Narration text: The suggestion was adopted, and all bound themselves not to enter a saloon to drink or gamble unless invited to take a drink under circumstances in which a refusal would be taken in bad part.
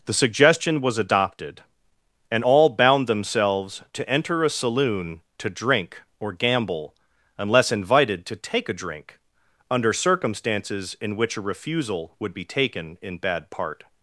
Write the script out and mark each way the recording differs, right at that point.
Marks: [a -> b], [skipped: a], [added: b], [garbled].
The suggestion was adopted, and all bound themselves [skipped: not] to enter a saloon to drink or gamble unless invited to take a drink under circumstances in which a refusal would be taken in bad part.